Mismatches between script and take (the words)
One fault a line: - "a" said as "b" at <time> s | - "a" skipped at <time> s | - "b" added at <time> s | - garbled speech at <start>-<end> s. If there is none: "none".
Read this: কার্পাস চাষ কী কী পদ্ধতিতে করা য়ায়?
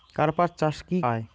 - "কী পদ্ধতিতে করা" skipped at 1.0 s